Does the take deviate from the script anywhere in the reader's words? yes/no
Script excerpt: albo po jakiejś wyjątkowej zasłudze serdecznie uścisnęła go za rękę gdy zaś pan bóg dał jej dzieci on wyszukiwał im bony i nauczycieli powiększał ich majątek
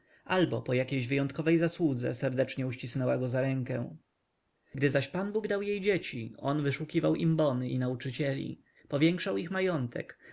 no